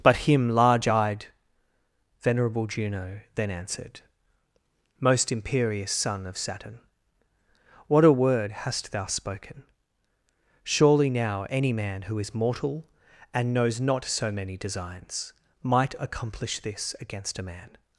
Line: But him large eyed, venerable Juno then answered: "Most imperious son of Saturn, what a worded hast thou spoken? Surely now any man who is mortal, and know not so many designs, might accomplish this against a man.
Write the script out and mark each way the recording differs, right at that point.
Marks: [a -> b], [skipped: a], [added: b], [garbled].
But him large eyed, venerable Juno then answered: "Most imperious son of Saturn, what a [worded -> word] hast thou spoken? Surely now any man who is mortal, and [know -> knows] not so many designs, might accomplish this against a man.